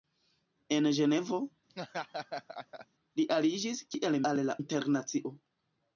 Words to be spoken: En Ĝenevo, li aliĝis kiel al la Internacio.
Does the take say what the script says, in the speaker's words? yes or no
yes